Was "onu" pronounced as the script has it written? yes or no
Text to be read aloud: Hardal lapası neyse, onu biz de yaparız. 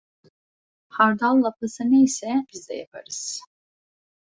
no